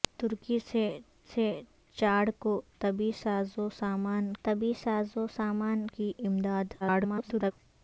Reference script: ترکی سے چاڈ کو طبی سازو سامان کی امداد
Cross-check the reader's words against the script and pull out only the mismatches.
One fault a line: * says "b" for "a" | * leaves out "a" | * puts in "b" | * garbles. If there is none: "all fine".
* puts in "سے"
* puts in "طبی سازو سامان"
* garbles